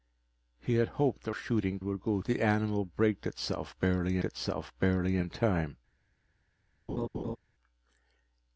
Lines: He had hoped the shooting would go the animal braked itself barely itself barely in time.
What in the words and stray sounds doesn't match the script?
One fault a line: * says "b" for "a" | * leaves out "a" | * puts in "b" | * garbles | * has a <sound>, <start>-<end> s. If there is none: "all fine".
* has a laugh, 6.9-7.4 s